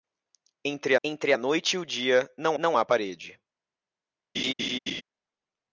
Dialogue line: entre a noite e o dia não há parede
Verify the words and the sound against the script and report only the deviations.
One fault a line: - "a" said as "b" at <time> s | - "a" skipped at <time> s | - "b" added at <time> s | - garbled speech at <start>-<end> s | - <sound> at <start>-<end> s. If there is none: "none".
- "entre" added at 1.0 s
- "não" added at 2.6 s
- laugh at 4.3-5.0 s